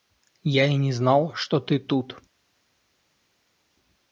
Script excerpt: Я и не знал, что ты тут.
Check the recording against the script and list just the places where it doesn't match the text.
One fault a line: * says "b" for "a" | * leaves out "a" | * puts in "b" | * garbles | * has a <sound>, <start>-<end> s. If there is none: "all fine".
all fine